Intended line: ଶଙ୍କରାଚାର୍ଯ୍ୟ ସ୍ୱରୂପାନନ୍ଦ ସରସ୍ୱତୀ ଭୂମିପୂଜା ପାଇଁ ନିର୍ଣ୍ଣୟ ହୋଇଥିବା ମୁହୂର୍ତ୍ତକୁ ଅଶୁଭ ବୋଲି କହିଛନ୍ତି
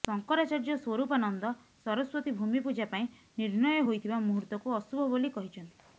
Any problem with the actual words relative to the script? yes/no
no